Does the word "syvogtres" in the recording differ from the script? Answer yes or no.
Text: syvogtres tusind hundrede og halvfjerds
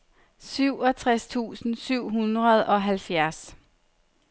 no